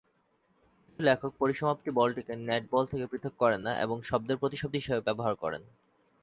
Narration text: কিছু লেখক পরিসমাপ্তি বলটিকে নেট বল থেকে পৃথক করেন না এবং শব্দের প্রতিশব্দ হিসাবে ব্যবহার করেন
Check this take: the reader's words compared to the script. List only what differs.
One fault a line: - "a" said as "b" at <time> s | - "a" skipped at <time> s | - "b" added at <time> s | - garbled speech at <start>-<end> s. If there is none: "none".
none